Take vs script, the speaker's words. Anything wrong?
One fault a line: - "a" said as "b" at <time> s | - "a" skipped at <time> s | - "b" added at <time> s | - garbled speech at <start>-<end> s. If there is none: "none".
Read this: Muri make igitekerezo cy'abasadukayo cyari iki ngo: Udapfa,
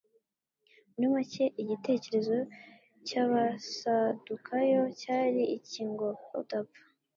none